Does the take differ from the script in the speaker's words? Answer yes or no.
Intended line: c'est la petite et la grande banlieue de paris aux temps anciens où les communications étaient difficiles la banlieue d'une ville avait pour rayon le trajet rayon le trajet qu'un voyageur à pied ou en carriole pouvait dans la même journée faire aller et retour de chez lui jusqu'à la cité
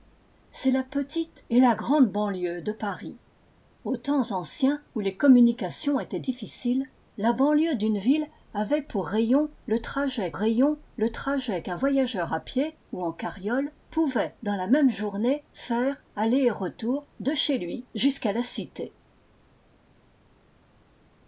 no